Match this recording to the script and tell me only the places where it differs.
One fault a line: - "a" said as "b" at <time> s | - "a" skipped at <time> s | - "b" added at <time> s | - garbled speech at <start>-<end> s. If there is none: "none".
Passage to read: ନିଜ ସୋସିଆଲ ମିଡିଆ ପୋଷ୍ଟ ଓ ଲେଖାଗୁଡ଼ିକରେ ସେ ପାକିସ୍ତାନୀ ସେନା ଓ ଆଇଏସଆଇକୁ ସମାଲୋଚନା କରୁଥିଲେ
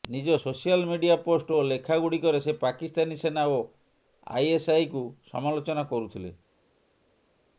none